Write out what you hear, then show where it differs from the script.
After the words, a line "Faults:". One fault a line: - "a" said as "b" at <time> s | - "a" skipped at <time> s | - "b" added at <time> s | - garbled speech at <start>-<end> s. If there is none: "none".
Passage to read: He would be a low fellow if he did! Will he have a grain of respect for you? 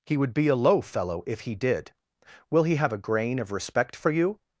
He would be a low fellow if he did! Will he have a grain of respect for you?
Faults:
none